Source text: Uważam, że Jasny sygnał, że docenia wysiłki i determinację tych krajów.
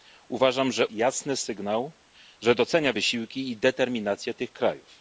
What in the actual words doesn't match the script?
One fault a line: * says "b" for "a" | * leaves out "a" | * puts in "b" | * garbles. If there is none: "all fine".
all fine